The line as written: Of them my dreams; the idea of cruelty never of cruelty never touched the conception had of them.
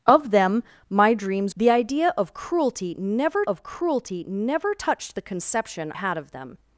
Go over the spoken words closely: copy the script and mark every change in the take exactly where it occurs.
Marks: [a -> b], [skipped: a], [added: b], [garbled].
Of them my dreams; the idea of cruelty never of cruelty never touched the conception had of them.